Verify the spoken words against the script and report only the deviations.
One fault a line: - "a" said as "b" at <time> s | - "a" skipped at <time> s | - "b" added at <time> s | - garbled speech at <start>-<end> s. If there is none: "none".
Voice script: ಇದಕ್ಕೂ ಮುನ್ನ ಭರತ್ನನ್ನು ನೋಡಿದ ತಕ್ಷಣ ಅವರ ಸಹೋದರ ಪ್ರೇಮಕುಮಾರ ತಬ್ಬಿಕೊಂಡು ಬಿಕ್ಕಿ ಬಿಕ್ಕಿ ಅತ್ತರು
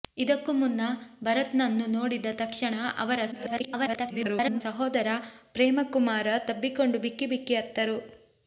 - garbled speech at 3.3-4.6 s